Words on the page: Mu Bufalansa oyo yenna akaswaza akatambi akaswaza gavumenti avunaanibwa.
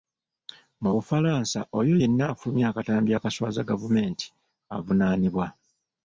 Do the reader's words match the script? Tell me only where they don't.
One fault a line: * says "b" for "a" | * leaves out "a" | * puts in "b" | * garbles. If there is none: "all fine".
* says "afulumya" for "akaswaza"